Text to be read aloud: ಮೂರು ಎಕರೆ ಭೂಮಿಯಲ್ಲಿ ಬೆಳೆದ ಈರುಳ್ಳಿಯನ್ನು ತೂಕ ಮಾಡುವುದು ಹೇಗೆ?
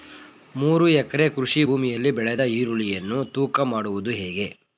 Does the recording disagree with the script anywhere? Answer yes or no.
yes